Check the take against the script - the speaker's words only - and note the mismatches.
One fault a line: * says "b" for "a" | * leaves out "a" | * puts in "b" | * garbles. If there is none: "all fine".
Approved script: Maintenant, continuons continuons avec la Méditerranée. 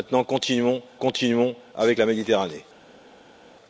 all fine